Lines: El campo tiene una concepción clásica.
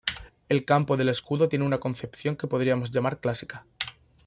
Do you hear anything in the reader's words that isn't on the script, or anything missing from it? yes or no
yes